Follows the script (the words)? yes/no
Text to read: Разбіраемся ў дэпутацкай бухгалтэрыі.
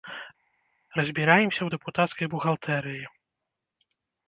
yes